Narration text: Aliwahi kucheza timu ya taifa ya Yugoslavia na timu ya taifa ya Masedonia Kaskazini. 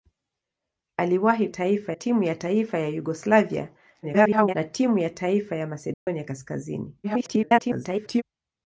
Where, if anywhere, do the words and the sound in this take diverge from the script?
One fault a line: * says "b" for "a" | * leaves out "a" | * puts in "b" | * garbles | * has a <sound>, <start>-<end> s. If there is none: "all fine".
* says "taifa" for "kucheza"
* garbles
* has a dropout, 5.9-6.1 s
* garbles